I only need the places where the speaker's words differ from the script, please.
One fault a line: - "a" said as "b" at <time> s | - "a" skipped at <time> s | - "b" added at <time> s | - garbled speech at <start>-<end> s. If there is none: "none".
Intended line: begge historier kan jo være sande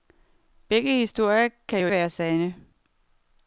none